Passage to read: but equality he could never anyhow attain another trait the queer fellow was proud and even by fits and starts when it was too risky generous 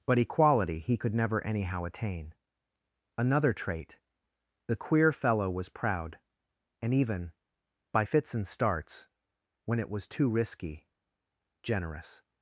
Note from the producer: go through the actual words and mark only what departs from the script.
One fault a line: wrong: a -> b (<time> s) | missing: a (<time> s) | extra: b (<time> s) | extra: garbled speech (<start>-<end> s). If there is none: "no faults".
no faults